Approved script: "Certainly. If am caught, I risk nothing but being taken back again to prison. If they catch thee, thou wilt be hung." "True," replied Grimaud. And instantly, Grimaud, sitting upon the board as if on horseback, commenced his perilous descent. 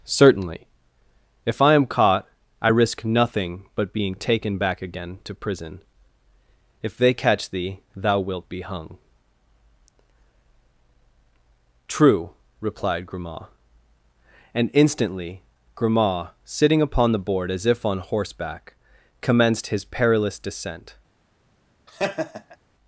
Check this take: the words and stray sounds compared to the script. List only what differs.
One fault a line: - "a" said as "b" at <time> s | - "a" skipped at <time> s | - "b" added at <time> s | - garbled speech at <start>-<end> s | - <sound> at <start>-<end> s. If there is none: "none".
- "I" added at 1.6 s
- laugh at 21.9-22.6 s